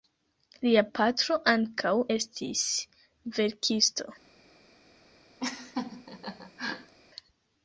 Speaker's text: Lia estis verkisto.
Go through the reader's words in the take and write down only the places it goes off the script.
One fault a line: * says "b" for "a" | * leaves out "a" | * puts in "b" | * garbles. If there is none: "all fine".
* puts in "patro ankaŭ"